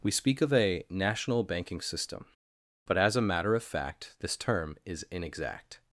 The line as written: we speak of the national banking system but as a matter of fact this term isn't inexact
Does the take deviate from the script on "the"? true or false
true